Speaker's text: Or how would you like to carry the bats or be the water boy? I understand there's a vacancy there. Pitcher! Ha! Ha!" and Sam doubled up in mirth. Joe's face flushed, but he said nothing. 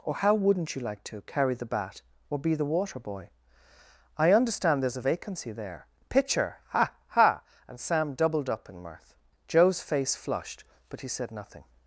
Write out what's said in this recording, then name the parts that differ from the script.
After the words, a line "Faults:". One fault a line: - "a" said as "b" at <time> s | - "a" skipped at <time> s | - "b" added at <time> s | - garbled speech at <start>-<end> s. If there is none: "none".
Or how wouldn't you like to carry the bat or be the water boy? I understand there's a vacancy there. Pitcher! Ha! Ha!" and Sam doubled up in mirth. Joe's face flushed, but he said nothing.
Faults:
- "would" said as "wouldn't" at 0.3 s
- "bats" said as "bat" at 1.6 s